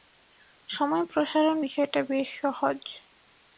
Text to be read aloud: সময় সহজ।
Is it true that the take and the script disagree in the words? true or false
true